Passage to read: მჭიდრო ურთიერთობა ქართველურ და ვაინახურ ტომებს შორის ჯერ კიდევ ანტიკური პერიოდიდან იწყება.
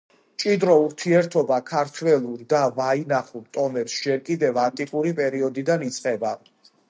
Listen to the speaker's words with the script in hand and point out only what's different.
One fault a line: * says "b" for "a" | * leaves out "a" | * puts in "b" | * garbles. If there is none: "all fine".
* leaves out "შორის"